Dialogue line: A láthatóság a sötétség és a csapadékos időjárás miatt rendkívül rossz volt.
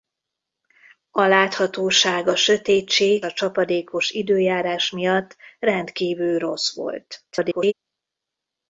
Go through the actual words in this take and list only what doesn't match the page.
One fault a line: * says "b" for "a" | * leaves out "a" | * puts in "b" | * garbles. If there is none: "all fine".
* leaves out "és"
* garbles